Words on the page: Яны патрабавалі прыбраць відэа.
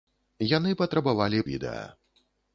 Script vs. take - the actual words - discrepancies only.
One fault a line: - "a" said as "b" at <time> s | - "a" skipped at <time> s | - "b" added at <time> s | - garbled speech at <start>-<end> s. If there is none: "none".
- "прыбраць" skipped at 1.4 s